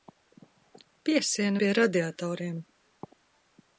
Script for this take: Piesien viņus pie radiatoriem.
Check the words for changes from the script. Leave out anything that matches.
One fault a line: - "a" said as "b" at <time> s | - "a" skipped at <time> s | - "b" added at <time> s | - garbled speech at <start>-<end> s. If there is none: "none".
- "viņus" skipped at 1.6 s